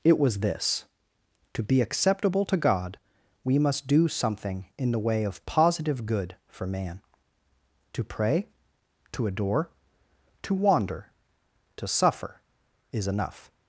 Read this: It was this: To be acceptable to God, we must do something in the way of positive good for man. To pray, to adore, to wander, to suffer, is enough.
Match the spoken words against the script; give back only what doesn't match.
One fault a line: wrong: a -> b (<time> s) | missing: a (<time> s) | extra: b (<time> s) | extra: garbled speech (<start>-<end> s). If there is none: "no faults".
no faults